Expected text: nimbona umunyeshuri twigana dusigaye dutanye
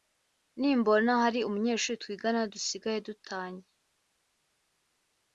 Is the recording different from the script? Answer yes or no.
yes